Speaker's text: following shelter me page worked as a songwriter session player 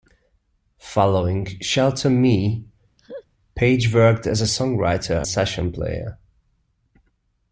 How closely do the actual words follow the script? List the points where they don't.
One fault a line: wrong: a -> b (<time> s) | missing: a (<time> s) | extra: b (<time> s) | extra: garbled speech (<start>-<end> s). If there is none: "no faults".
no faults